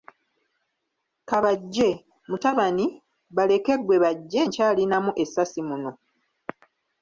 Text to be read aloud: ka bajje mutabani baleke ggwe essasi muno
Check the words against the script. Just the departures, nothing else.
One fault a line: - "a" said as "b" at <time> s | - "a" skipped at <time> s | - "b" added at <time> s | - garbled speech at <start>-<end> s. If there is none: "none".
- "bajje nkyalinamu" added at 4.0 s